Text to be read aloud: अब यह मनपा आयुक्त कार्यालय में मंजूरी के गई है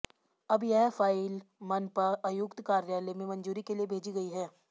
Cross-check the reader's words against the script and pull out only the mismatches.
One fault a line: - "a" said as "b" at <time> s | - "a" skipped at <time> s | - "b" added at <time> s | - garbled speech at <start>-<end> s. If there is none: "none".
- "फाइल" added at 0.9 s
- "लिए भेजी" added at 3.8 s